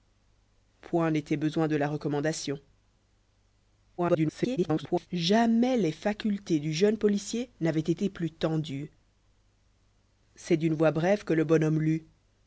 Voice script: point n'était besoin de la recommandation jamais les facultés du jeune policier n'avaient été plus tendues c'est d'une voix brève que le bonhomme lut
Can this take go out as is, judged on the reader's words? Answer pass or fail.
fail